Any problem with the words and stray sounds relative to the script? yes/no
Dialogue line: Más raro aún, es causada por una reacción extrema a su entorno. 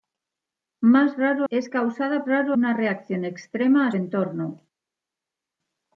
yes